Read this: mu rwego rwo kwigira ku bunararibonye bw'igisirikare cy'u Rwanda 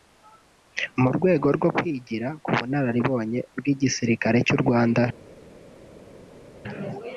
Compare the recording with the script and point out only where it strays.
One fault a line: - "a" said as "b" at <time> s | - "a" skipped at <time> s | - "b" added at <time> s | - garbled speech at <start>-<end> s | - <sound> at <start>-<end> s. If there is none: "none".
none